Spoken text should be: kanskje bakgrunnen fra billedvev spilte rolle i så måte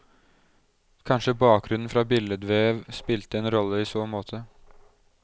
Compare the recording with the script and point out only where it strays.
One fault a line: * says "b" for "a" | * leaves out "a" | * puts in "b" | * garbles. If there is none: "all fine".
* puts in "en"